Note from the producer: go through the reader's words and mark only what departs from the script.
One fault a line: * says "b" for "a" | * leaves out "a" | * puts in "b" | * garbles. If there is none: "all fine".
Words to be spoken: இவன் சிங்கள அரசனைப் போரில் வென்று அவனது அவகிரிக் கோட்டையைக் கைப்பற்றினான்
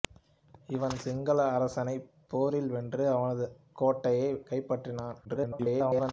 * leaves out "அவகிரிக்"
* garbles